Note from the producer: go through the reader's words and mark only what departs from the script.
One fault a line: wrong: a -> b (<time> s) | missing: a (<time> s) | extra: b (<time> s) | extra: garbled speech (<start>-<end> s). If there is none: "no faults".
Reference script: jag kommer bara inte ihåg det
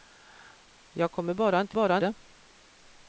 wrong: ihåg -> bara (1.7 s)